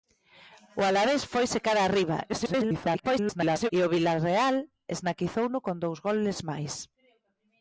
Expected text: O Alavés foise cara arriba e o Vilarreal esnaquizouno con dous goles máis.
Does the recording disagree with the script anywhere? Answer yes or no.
yes